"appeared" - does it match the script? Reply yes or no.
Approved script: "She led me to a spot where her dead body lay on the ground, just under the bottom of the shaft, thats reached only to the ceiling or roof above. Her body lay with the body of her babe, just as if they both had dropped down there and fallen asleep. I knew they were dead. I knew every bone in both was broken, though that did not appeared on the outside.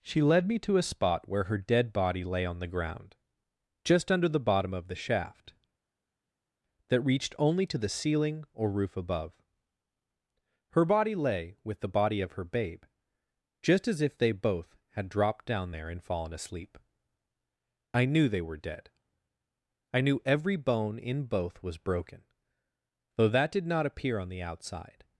no